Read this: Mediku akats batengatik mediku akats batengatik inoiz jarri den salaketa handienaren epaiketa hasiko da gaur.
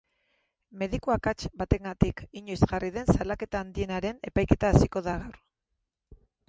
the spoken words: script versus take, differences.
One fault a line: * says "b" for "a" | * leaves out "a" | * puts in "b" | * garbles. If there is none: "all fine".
* leaves out "mediku akats batengatik"